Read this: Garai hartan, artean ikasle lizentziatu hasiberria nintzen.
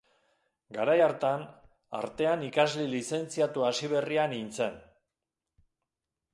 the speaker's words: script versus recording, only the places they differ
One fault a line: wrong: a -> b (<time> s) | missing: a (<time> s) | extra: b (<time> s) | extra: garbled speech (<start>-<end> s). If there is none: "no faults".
no faults